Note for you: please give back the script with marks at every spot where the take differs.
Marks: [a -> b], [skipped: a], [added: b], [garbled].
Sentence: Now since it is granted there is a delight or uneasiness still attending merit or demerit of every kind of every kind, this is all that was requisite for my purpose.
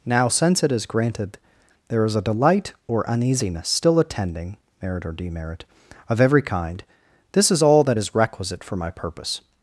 Now since it is granted there is a delight or uneasiness still attending merit or demerit of every kind [skipped: of every kind,] this is all that [was -> is] requisite for my purpose.